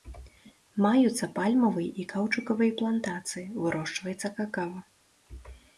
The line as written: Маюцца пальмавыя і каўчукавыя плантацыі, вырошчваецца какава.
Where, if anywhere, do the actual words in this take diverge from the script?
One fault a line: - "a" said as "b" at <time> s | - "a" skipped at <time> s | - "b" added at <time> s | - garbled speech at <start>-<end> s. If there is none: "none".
none